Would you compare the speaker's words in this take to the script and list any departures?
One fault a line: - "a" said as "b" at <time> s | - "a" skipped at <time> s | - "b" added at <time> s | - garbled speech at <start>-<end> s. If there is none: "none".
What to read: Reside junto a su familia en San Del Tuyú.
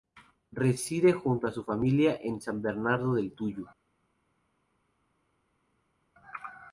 - "Bernardo" added at 2.6 s